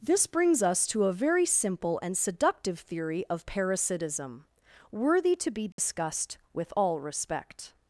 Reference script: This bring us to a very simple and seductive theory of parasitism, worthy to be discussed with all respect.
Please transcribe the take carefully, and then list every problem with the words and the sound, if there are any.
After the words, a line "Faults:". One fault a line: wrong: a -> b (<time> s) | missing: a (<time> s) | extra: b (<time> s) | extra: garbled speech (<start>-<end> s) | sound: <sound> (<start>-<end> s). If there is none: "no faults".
This brings us to a very simple and seductive theory of parasitism, worthy to be discussed with all respect.
Faults:
wrong: bring -> brings (0.2 s)
sound: dropout (5.7-5.8 s)